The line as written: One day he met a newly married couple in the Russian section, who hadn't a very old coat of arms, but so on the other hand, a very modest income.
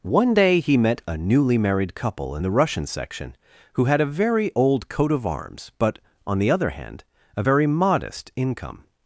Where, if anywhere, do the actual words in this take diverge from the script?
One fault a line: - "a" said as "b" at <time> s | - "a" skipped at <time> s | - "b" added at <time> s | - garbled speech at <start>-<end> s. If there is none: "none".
- "hadn't" said as "had" at 3.8 s
- "so" skipped at 6.0 s